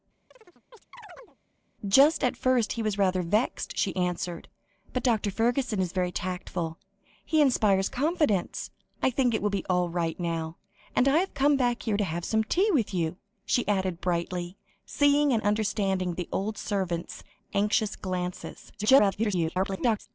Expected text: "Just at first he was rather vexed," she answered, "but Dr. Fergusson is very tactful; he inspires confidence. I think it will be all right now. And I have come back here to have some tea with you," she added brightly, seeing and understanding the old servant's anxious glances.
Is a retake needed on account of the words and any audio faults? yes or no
yes